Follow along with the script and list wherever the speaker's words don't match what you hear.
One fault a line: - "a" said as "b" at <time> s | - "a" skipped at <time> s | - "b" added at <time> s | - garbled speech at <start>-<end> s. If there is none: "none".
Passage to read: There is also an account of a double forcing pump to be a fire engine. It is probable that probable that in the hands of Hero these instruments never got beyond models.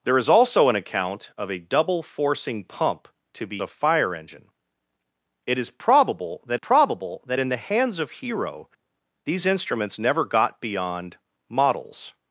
none